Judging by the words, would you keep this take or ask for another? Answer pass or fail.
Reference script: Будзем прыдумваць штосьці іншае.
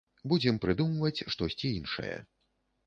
pass